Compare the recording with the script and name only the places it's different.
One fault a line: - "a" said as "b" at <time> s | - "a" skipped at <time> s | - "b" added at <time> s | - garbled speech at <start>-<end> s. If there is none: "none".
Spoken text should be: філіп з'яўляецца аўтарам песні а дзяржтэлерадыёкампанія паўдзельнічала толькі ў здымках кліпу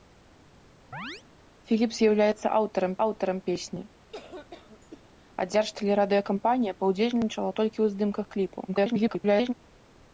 - "аўтарам" added at 3.1 s
- garbled speech at 8.7-9.5 s